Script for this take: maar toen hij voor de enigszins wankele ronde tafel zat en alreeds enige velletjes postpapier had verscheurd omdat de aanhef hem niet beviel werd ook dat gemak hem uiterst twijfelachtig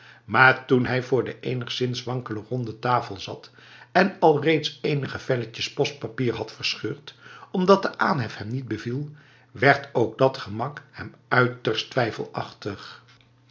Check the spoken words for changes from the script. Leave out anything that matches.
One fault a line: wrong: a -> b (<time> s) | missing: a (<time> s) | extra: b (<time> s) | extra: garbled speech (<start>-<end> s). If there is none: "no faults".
no faults